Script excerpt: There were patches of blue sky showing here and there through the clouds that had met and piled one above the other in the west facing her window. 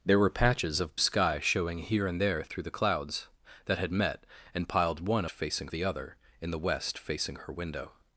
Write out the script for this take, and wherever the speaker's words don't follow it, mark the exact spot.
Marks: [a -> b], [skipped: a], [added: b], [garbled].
There were patches of [skipped: blue] sky showing here and there through the clouds that had met and piled one [above -> facing] the other in the west facing her window.